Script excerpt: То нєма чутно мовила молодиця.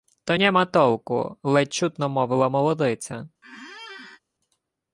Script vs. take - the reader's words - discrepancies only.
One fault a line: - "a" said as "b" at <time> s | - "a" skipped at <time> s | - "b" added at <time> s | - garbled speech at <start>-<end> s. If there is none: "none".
- "толку ледь" added at 0.7 s